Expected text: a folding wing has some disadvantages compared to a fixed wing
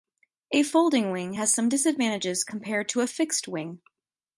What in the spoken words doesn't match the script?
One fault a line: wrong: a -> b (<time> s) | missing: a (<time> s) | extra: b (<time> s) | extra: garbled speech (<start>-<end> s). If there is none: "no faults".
no faults